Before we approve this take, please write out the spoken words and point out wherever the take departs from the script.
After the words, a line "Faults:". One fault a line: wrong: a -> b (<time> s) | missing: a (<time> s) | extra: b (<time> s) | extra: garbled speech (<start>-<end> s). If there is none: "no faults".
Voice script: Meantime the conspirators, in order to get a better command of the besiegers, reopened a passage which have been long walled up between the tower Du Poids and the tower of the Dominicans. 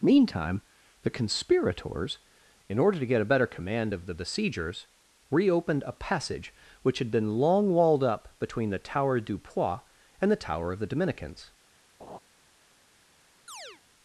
Meantime the conspirators, in order to get a better command of the besiegers, reopened a passage which had been long walled up between the tower Du Poids and the tower of the Dominicans.
Faults:
wrong: have -> had (7.0 s)